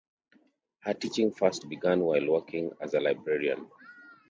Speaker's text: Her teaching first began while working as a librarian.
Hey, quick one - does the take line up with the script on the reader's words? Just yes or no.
yes